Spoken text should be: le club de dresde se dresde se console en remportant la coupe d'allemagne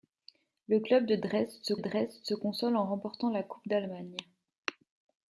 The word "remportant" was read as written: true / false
true